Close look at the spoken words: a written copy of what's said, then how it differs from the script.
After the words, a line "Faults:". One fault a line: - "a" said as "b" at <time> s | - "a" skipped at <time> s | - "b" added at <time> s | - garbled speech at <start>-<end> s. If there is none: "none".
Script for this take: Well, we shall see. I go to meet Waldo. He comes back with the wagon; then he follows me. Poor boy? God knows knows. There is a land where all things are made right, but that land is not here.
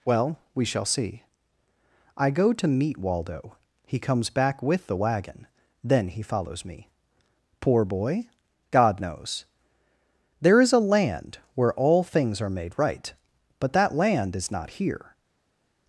Well, we shall see. I go to meet Waldo. He comes back with the wagon; then he follows me. Poor boy? God knows. There is a land where all things are made right, but that land is not here.
Faults:
- "knows" skipped at 9.4 s